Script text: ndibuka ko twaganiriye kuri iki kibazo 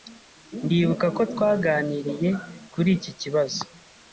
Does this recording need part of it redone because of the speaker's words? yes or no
no